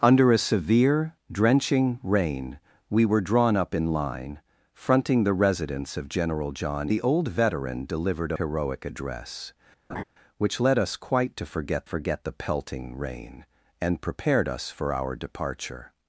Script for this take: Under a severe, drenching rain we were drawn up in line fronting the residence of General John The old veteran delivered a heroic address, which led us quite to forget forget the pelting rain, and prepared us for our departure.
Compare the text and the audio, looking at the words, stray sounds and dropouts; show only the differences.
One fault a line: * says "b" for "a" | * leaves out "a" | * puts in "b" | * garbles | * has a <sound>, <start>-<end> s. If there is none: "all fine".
* has a laugh, 9.9-10.0 s